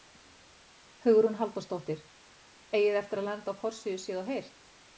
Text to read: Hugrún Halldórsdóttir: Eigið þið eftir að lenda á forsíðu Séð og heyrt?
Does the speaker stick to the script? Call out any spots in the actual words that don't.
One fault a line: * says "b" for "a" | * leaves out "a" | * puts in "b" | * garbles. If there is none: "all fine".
all fine